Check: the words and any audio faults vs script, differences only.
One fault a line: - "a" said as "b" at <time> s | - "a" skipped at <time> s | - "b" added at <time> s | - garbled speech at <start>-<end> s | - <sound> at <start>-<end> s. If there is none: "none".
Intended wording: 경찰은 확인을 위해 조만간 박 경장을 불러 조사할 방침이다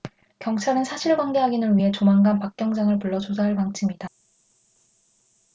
- "사실관계" added at 0.8 s